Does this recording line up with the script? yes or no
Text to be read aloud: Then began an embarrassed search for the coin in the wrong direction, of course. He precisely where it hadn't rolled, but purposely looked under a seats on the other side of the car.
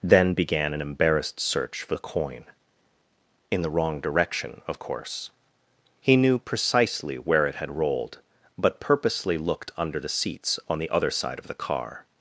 no